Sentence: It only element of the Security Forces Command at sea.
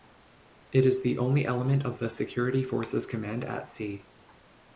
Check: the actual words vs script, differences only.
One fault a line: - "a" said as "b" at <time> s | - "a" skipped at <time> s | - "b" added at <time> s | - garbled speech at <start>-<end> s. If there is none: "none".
- "is the" added at 0.8 s